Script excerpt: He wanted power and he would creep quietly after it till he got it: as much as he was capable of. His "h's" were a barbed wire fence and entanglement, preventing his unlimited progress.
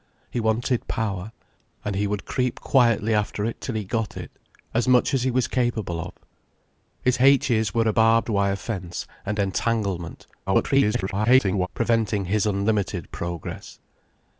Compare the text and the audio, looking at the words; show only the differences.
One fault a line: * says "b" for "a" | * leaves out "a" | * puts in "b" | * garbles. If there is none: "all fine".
* garbles